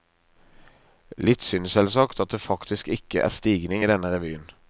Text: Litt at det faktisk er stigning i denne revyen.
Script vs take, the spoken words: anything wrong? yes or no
yes